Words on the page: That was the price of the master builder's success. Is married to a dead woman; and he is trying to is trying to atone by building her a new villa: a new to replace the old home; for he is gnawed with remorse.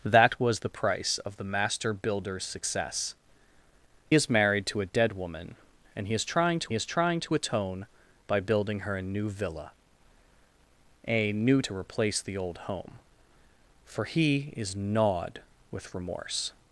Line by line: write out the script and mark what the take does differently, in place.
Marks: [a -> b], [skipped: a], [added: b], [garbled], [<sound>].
That was the price of the master builder's success. Is married to a dead woman; and he is trying to is trying to atone by building her a new villa: a new to replace the old home; for he is gnawed with remorse.